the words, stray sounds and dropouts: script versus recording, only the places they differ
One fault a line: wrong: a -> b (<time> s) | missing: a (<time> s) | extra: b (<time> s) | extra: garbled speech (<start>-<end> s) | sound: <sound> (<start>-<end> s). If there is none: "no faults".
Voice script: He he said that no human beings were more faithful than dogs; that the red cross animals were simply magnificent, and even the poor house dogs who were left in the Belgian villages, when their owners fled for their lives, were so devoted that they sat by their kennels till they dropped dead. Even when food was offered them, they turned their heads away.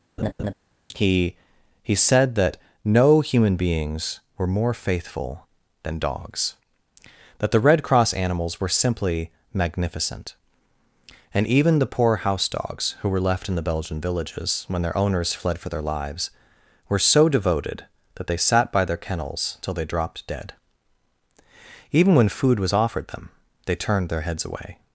sound: laugh (0.2-0.5 s)